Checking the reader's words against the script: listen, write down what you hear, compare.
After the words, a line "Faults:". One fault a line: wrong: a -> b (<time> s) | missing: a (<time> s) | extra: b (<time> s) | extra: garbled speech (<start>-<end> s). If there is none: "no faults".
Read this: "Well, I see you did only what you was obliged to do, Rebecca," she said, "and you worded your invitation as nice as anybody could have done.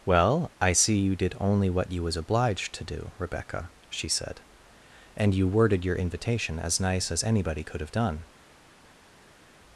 "Well, I see you did only what you was obliged to do, Rebecca," she said, "and you worded your invitation as nice as anybody could have done.
Faults:
no faults